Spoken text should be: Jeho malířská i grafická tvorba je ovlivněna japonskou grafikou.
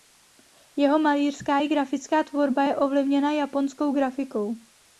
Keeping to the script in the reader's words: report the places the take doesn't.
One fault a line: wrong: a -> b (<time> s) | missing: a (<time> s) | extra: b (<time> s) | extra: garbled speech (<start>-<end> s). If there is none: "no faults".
no faults